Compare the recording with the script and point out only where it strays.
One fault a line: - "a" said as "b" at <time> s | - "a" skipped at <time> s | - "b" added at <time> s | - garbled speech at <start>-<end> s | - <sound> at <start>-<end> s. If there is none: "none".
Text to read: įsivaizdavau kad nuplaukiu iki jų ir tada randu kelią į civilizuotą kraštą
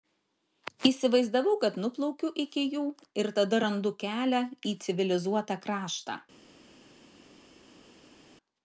none